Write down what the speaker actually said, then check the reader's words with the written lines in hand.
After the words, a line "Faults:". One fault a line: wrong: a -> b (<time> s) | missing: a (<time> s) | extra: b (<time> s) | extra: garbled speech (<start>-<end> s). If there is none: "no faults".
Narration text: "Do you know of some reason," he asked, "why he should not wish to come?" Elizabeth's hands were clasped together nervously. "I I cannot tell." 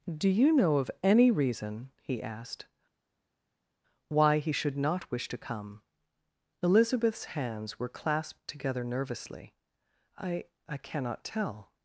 "Do you know of any reason," he asked, "why he should not wish to come?" Elizabeth's hands were clasped together nervously. "I I cannot tell."
Faults:
wrong: some -> any (1.0 s)